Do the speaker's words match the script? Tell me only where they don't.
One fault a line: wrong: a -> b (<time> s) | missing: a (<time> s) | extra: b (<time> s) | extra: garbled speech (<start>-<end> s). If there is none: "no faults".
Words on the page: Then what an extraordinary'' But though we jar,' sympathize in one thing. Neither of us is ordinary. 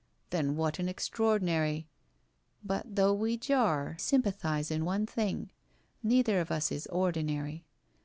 no faults